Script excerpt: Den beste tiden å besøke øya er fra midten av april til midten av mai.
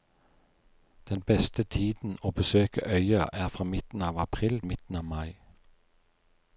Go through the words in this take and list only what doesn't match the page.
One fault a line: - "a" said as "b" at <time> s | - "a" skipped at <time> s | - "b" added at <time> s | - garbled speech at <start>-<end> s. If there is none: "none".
- "til" skipped at 4.6 s